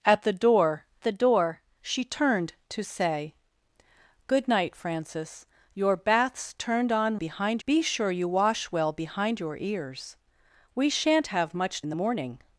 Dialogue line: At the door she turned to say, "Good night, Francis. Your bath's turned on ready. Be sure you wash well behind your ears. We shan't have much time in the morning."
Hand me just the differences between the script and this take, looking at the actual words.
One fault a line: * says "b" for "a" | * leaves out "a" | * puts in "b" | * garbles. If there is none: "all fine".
* puts in "the door"
* says "behind" for "ready"
* leaves out "time"